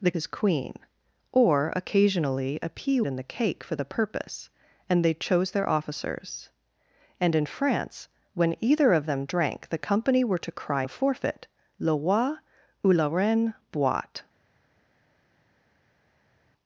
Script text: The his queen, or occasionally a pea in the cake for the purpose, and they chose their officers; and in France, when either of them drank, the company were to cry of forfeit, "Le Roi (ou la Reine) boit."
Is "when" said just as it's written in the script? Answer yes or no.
yes